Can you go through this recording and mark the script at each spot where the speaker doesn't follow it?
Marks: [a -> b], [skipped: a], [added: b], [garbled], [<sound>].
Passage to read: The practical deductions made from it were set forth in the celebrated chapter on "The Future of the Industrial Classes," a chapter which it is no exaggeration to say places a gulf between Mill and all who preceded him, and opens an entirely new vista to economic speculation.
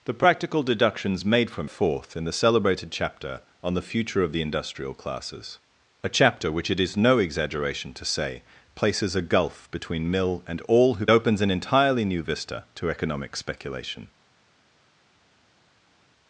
The practical deductions made from [skipped: it were set] forth in the celebrated chapter on "The Future of the Industrial Classes," a chapter which it is no exaggeration to say places a gulf between Mill and all who [skipped: preceded him, and] opens an entirely new vista to economic speculation.